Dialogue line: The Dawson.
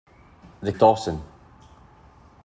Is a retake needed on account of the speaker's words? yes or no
no